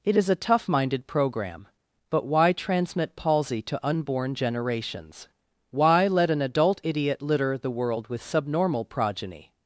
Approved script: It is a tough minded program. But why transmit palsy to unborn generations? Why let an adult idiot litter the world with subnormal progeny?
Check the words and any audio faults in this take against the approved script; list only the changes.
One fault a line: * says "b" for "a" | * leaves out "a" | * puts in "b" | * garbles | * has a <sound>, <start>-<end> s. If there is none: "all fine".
all fine